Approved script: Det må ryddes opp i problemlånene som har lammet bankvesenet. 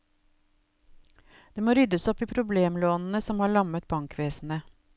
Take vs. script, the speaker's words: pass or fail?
pass